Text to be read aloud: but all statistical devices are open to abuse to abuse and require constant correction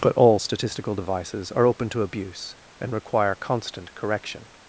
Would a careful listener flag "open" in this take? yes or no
no